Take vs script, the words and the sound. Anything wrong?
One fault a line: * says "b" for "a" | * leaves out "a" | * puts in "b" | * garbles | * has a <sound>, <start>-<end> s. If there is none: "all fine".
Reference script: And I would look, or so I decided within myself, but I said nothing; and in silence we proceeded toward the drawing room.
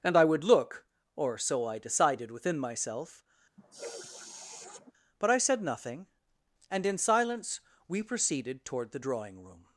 * has a sniff, 3.6-4.9 s